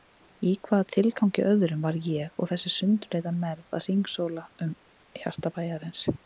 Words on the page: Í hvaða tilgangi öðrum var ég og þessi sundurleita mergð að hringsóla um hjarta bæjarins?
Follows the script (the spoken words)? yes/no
yes